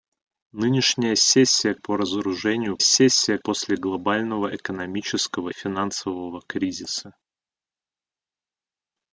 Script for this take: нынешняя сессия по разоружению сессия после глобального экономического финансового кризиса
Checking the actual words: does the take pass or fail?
pass